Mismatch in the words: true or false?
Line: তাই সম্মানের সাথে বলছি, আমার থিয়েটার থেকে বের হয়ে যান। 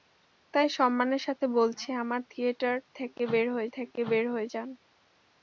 true